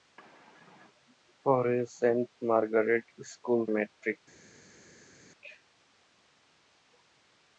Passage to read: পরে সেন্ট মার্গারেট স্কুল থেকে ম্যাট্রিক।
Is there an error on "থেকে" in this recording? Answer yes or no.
yes